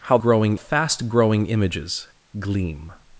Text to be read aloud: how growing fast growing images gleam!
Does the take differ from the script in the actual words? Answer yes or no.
no